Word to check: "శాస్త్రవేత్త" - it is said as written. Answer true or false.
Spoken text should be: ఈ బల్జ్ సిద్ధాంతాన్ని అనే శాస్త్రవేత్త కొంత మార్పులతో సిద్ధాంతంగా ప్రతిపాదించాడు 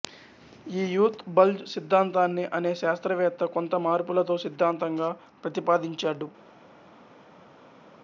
true